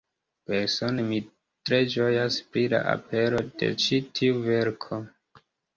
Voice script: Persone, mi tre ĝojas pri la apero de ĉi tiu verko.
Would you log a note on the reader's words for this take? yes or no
no